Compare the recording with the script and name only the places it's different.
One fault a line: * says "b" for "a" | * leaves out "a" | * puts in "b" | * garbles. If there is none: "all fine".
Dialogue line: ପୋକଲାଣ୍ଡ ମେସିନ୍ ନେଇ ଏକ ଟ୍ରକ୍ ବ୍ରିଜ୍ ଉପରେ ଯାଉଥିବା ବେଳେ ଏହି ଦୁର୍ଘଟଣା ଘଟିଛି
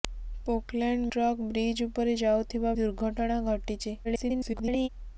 * leaves out "ମେସିନ୍ ନେଇ ଏକ"
* leaves out "ବେଳେ ଏହି"
* garbles